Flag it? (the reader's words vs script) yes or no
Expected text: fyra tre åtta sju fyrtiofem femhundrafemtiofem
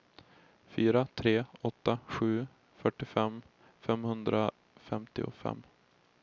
no